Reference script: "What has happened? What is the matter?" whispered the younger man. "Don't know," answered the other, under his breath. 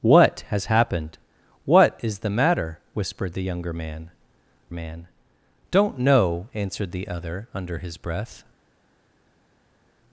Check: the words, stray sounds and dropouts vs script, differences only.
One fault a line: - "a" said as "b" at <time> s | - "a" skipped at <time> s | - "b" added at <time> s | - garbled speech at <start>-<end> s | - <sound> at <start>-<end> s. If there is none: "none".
- "man" added at 4.7 s